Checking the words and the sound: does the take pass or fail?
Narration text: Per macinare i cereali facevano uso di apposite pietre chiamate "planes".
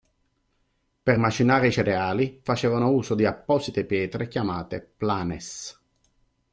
pass